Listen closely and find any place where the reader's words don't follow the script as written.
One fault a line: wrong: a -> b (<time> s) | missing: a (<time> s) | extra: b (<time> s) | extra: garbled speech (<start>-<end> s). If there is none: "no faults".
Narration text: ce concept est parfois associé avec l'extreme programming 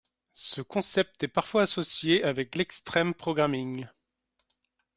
no faults